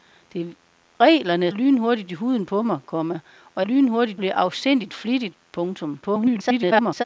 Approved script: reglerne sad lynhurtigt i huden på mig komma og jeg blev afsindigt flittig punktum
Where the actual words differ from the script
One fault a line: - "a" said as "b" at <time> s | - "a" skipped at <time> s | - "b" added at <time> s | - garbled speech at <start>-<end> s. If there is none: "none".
- "sad" skipped at 1.5 s
- "jeg" said as "lynhurtigt" at 3.6 s
- garbled speech at 6.0-7.0 s